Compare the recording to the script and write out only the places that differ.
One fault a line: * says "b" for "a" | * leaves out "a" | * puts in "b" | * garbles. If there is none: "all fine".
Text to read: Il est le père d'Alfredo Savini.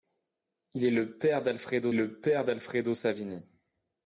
* puts in "le père d'Alfredo"